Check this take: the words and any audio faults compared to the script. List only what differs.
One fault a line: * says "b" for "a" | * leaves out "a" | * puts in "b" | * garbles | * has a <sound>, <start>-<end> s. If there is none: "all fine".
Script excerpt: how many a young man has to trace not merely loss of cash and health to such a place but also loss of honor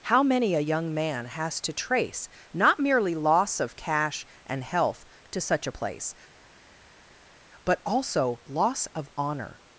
all fine